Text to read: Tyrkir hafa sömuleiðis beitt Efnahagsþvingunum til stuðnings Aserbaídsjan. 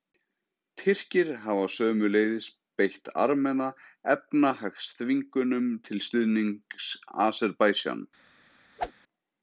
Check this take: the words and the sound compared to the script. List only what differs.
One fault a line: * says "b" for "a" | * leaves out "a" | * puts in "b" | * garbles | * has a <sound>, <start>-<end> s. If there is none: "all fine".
* puts in "Armena"
* has a whoosh, 8.8-8.9 s